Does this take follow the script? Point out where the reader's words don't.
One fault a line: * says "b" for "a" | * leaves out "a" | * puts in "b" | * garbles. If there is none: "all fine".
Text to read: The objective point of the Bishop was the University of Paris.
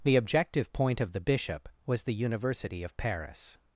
all fine